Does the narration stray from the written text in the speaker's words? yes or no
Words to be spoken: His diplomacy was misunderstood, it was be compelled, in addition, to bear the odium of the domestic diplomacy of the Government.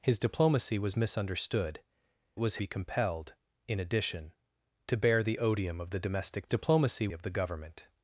no